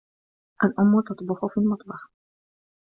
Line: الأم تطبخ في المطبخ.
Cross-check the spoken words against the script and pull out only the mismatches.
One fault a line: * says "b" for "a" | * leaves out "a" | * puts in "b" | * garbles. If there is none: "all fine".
all fine